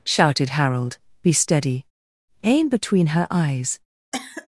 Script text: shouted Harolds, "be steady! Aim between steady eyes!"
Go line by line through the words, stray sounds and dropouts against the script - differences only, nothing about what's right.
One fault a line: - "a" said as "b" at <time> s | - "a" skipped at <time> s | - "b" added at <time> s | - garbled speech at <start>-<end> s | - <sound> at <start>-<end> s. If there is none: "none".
- "Harolds" said as "Harold" at 0.5 s
- "steady" said as "her" at 3.1 s
- cough at 4.1-4.5 s